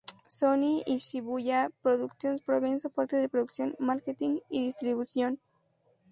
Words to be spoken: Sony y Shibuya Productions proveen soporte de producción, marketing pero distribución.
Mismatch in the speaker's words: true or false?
true